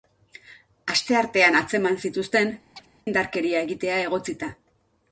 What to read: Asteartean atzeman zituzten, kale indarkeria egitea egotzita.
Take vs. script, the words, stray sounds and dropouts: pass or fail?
fail